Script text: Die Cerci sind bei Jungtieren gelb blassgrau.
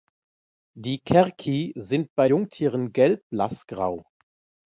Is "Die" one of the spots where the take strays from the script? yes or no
no